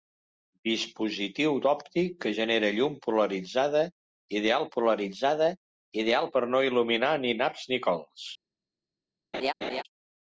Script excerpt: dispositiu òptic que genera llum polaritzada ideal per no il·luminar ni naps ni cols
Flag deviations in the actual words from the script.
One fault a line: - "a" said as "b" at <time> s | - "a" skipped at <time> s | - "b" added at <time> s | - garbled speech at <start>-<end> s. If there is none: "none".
- "polaritzada ideal" added at 4.8 s